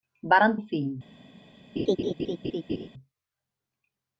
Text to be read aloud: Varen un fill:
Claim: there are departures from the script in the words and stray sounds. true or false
true